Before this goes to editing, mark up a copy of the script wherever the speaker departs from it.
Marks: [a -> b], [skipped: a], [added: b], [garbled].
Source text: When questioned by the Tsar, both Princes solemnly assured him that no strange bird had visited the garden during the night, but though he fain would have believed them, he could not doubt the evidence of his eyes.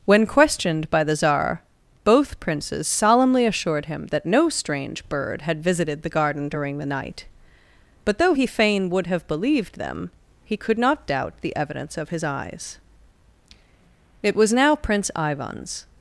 When questioned by the Tsar, both Princes solemnly assured him that no strange bird had visited the garden during the night, but though he fain would have believed them, he could not doubt the evidence of his eyes. [added: It was now Prince Ivan's]